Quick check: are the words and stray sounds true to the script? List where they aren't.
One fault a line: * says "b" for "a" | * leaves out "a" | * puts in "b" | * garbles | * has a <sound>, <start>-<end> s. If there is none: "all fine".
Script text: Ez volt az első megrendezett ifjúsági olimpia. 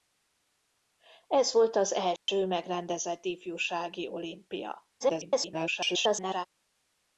* has a dropout, 2.2-2.3 s
* garbles